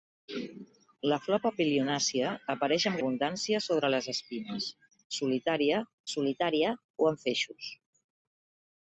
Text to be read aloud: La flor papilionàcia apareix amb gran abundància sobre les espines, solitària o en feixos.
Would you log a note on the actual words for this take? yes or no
yes